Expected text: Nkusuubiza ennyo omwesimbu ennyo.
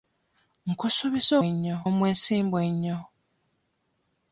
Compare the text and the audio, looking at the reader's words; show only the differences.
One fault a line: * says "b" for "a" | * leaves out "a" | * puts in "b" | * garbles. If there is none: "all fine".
all fine